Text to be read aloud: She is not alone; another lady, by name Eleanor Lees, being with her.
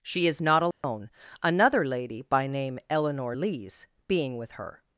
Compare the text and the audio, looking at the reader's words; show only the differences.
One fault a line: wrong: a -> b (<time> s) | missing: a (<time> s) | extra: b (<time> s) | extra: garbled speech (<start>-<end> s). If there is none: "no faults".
no faults